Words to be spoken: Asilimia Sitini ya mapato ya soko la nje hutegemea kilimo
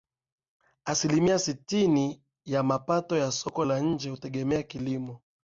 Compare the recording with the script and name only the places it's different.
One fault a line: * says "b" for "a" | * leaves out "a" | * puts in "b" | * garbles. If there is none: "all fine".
all fine